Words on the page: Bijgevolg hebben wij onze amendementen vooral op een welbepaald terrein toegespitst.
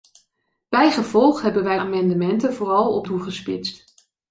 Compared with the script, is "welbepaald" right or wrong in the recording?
wrong